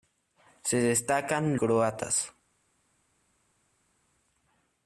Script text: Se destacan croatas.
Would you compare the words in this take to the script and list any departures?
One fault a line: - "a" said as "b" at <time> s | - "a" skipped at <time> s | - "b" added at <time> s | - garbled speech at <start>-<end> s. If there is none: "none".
none